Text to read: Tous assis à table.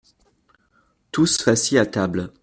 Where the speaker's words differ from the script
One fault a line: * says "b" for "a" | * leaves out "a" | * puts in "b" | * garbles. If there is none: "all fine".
all fine